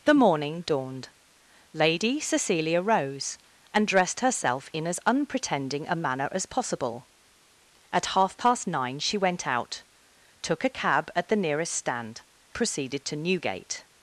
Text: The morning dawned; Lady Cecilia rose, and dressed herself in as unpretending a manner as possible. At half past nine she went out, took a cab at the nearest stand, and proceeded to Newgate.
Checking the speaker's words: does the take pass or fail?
fail